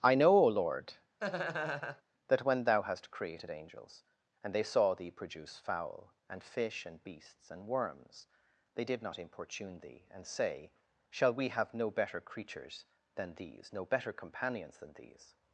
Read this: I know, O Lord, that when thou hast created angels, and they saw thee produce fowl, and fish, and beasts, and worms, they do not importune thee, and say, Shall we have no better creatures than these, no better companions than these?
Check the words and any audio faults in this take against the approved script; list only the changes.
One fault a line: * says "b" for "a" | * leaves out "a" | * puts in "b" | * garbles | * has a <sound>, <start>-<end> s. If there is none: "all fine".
* has a laugh, 1.2-2.0 s
* says "did" for "do"